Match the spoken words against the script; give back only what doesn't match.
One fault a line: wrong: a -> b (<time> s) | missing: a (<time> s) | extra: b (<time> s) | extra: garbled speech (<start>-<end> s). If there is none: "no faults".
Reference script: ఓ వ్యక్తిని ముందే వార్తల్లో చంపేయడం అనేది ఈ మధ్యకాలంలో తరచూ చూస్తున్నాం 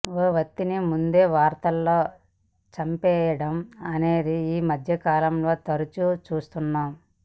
no faults